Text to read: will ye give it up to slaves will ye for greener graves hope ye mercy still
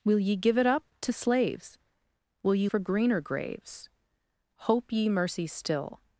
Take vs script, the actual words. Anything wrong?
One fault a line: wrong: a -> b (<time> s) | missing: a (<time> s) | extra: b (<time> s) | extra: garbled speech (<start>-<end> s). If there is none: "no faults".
no faults